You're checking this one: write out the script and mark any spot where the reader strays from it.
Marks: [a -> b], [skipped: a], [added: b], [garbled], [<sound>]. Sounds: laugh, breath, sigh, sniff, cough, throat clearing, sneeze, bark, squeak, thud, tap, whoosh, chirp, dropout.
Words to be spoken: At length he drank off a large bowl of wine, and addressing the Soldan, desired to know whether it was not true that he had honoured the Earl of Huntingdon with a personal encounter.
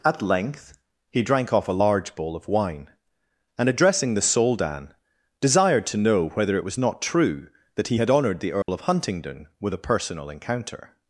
At length he drank off a large bowl of wine, and addressing the Soldan, desired to know whether it was not true that he had honoured the Earl [dropout] of Huntingdon with a personal encounter.